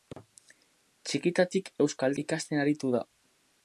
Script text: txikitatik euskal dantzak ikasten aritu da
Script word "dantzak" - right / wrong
wrong